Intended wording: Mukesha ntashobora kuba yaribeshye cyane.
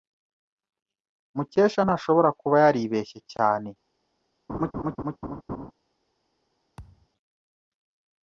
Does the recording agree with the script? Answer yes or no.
yes